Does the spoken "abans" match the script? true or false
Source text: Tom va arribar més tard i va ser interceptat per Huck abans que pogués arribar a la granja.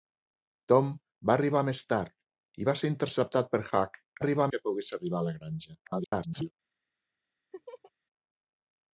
false